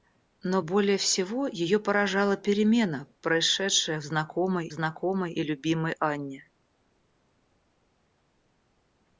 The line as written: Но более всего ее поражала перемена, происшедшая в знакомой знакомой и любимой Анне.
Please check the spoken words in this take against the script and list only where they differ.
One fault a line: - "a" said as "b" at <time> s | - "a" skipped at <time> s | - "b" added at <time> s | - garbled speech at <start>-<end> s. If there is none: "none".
none